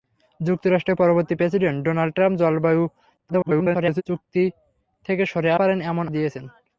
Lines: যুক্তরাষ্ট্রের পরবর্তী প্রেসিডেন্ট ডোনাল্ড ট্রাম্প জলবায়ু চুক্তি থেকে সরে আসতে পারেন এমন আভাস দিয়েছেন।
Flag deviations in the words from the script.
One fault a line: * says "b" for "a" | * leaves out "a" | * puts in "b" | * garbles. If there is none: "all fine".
* garbles
* leaves out "আসতে"
* leaves out "আভাস"